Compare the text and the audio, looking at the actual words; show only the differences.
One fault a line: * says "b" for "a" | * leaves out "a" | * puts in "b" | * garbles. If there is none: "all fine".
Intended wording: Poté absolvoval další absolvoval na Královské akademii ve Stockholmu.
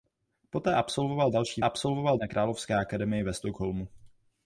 all fine